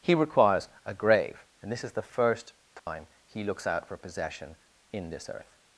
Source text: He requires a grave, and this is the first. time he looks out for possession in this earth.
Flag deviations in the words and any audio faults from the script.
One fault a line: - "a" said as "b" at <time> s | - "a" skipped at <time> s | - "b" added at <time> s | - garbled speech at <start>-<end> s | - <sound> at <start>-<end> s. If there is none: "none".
- dropout at 2.8-2.9 s